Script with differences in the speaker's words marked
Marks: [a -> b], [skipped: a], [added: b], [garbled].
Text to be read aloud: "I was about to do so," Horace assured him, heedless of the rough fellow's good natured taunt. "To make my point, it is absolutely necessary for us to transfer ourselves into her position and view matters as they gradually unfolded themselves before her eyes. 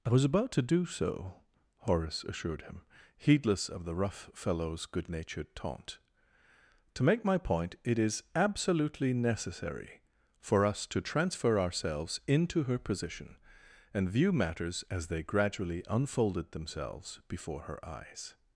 "I was about to do so," Horace assured him, heedless of the rough fellow's good natured taunt. "To make my point, it is absolutely necessary for us to transfer ourselves into her position and view matters as they gradually unfolded themselves before her eyes.